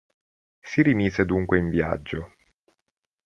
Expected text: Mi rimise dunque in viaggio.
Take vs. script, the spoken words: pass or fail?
fail